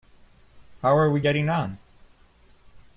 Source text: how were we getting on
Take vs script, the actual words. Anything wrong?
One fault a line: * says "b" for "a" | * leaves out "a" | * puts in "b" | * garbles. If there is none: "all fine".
* says "are" for "were"